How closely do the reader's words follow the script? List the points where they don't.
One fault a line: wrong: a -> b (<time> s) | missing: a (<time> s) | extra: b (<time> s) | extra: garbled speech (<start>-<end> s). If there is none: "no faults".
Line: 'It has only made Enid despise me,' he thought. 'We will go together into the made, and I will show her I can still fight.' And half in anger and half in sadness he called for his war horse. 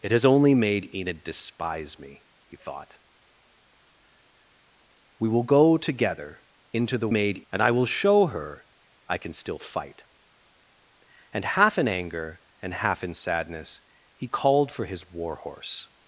no faults